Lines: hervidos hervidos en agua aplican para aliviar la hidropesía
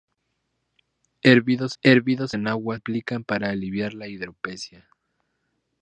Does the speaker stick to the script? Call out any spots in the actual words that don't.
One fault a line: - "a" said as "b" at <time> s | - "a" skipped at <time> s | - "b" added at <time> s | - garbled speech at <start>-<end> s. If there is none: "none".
none